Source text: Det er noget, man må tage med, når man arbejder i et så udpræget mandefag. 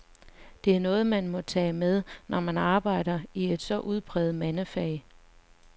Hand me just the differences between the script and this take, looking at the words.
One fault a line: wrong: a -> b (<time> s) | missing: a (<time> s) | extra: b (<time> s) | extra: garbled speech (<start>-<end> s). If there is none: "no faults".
no faults